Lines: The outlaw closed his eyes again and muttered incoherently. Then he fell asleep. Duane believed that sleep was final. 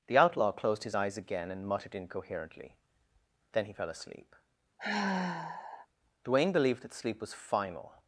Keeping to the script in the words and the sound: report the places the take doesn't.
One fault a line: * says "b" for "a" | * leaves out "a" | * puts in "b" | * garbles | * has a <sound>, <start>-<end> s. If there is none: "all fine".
* has a sigh, 4.8-5.9 s